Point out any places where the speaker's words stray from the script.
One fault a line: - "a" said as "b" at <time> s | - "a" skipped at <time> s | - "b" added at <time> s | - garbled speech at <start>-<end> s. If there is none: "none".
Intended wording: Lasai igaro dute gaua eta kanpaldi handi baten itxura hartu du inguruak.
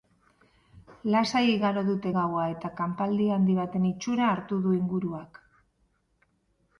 none